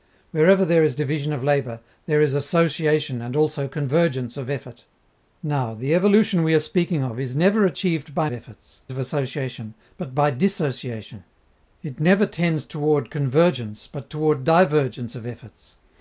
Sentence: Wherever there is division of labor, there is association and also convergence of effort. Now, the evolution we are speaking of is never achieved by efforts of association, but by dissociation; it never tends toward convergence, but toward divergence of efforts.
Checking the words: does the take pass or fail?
pass